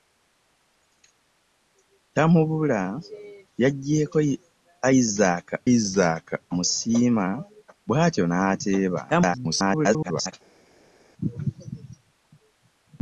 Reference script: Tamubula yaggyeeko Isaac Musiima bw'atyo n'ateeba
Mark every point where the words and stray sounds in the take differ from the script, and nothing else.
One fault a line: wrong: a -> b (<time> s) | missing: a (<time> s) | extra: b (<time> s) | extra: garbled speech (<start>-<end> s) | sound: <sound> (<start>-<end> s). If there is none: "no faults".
extra: Isaac (5.8 s)
extra: garbled speech (9.1-10.3 s)